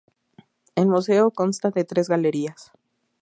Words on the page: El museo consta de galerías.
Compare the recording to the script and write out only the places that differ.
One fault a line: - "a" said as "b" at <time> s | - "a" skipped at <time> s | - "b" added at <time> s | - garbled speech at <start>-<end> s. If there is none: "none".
- "tres" added at 1.8 s